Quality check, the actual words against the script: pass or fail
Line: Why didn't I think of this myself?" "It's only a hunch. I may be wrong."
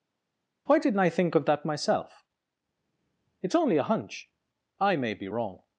fail